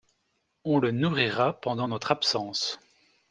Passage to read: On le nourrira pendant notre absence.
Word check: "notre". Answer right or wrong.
right